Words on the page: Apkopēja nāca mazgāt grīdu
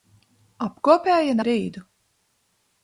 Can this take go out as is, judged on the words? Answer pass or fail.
fail